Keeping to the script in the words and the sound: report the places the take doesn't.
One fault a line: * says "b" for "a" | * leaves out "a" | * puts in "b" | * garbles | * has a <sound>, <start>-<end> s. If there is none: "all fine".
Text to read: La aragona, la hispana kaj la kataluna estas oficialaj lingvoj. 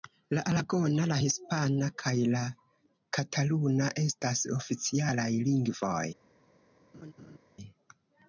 * has a laugh, 6.9-7.4 s